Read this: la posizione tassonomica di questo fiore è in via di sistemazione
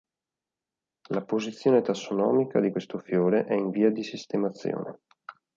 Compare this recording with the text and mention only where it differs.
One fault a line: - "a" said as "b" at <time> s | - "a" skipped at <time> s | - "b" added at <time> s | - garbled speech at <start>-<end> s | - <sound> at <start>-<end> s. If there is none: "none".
none